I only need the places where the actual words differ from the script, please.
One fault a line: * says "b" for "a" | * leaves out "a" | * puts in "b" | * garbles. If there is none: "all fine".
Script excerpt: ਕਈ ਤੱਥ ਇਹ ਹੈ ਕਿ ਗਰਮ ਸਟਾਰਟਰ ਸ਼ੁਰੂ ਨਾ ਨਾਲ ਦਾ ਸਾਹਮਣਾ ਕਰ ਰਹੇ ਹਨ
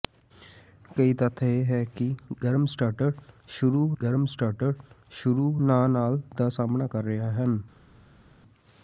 * puts in "ਗਰਮ ਸਟਾਰਟਰ ਸ਼ੁਰੂ"